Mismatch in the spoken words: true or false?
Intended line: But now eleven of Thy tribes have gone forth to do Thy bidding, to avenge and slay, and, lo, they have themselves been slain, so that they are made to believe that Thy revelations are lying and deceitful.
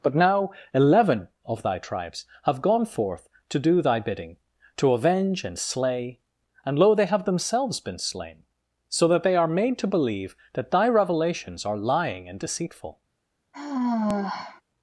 false